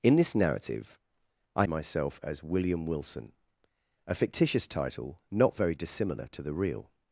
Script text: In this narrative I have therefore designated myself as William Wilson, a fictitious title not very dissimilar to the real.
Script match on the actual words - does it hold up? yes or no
no